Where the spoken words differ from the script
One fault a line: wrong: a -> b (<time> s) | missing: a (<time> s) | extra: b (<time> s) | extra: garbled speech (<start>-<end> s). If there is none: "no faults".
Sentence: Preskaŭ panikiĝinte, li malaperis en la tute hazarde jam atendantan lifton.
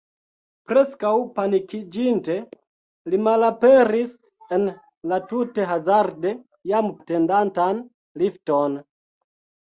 no faults